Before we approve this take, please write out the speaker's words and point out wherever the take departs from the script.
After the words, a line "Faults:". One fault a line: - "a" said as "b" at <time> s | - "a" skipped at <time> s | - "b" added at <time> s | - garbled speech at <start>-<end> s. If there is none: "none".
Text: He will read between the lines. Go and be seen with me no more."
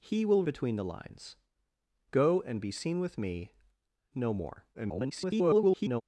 He will between the lines. Go and be seen with me no more." [garbled]
Faults:
- "read" skipped at 0.4 s
- garbled speech at 4.7-6.0 s